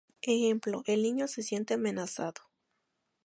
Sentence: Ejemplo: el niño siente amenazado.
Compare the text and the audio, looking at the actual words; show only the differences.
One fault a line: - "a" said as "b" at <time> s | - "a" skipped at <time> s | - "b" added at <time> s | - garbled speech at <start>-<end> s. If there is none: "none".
- "se" added at 1.3 s